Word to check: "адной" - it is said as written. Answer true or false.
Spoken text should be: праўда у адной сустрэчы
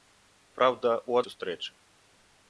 false